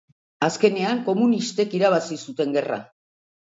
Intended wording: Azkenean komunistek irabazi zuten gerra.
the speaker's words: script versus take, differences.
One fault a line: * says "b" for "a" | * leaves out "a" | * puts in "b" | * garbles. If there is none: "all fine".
all fine